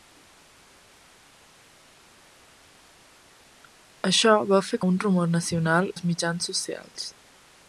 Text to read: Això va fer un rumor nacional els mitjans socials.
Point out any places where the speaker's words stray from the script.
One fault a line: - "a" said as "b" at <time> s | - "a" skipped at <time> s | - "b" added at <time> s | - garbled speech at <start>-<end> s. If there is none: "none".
none